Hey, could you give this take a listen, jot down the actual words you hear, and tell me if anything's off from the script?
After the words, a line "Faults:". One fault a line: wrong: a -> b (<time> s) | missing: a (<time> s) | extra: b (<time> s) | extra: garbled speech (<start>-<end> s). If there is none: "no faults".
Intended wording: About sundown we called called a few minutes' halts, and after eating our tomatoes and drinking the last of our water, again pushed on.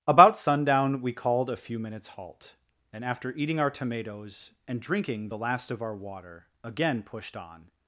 About sundown we called a few minutes' halt, and after eating our tomatoes and drinking the last of our water, again pushed on.
Faults:
missing: called (1.5 s)
wrong: halts -> halt (2.1 s)